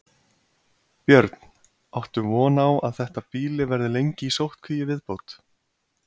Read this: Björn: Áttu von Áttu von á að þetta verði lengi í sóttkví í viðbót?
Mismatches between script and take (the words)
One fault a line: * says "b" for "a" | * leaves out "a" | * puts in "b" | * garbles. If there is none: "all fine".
* leaves out "Áttu von"
* puts in "býli"